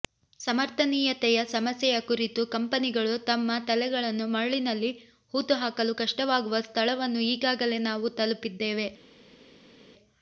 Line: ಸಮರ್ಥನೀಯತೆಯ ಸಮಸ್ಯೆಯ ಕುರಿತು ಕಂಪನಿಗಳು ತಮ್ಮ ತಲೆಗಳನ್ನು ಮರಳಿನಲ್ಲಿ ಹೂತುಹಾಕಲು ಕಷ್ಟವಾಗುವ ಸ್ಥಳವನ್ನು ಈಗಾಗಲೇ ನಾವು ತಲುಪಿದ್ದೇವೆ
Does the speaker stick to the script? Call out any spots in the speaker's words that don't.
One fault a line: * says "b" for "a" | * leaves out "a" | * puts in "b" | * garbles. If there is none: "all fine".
all fine